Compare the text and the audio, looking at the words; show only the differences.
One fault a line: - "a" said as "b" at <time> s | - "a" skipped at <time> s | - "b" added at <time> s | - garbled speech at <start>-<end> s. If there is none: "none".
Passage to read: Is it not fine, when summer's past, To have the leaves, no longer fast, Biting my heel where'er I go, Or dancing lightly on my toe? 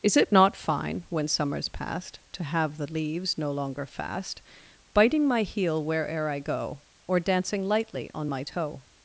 none